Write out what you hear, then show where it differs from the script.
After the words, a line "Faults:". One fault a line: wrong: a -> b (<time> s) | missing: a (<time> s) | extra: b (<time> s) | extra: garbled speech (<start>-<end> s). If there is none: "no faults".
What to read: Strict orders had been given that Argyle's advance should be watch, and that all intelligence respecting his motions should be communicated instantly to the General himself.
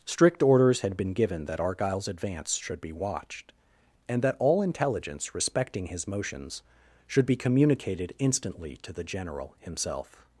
Strict orders had been given that Argyle's advance should be watched, and that all intelligence respecting his motions should be communicated instantly to the General himself.
Faults:
wrong: watch -> watched (2.9 s)